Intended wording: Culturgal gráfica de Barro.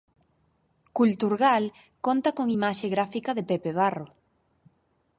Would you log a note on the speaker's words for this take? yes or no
yes